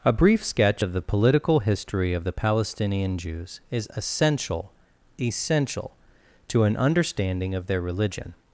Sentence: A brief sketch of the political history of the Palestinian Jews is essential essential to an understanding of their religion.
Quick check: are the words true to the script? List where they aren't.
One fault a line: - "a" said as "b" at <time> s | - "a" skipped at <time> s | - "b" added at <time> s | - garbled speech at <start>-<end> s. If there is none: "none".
none